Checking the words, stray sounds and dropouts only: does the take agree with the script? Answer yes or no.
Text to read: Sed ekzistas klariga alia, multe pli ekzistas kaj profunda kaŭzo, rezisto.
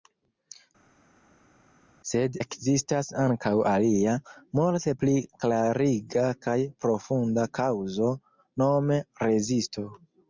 no